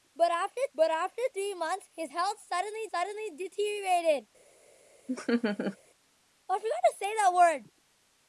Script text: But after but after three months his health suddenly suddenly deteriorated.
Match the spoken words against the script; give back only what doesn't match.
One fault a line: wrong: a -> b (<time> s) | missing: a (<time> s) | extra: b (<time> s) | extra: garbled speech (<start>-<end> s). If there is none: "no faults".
no faults